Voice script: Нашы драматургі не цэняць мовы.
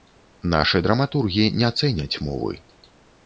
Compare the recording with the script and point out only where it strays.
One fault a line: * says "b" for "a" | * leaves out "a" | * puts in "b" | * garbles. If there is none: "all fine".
all fine